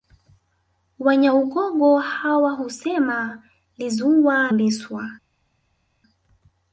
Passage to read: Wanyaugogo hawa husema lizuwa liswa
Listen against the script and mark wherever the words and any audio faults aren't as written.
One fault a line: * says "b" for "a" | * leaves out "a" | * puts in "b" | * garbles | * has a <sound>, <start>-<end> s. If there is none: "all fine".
all fine